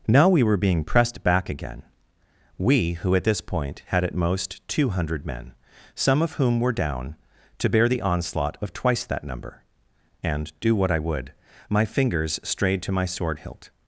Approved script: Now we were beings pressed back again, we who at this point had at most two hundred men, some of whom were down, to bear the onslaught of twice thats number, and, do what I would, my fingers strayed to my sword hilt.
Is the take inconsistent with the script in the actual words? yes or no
yes